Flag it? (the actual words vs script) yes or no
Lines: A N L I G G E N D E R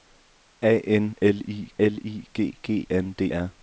yes